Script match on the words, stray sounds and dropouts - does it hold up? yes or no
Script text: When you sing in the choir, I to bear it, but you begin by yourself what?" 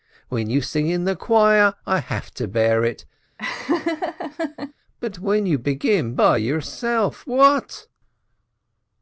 no